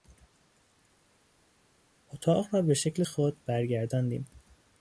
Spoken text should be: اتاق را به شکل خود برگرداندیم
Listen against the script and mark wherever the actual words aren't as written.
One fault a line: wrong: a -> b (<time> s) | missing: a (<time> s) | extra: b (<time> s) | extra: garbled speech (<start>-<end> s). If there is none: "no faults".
no faults